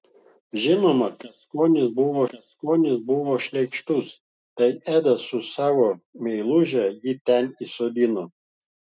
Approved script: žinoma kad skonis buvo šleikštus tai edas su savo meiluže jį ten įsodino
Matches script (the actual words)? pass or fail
fail